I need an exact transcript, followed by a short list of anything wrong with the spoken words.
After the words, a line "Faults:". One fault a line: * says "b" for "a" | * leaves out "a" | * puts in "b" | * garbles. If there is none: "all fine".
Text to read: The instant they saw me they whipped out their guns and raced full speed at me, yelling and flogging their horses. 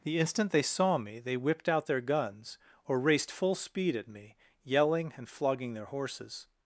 The instant they saw me they whipped out their guns or raced full speed at me, yelling and flogging their horses.
Faults:
* says "or" for "and"